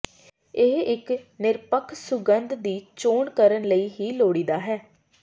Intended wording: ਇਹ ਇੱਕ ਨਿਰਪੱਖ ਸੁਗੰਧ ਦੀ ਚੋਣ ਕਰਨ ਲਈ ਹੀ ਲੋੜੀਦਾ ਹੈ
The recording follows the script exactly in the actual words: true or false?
true